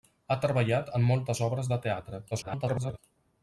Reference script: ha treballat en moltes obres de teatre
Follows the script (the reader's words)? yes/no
no